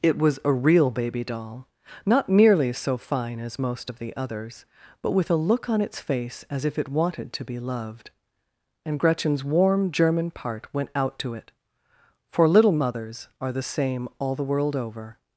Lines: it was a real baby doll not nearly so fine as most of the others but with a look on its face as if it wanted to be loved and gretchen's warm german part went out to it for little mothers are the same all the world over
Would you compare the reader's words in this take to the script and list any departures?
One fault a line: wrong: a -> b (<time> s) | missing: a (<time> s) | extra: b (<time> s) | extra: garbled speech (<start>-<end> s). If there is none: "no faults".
no faults